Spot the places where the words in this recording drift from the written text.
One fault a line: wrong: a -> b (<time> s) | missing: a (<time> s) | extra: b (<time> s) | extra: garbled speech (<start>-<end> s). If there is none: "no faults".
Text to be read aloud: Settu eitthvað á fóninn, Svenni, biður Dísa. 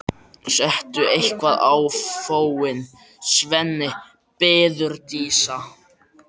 no faults